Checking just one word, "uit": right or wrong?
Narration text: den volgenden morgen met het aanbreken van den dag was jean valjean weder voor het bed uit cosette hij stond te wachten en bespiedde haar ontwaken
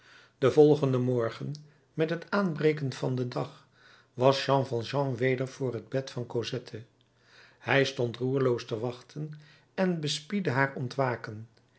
wrong